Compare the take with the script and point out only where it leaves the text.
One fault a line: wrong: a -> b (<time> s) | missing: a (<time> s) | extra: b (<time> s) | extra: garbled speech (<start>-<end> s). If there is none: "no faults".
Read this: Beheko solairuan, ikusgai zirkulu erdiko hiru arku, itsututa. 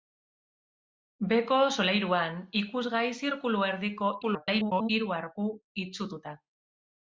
extra: garbled speech (4.2-4.9 s)